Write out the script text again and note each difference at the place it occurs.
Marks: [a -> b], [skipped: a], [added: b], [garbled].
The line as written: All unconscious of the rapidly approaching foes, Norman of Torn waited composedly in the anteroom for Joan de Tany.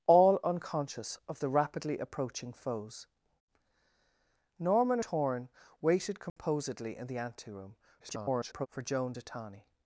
All unconscious of the rapidly approaching foes, Norman [skipped: of] Torn waited composedly in the anteroom [garbled] for Joan de Tany.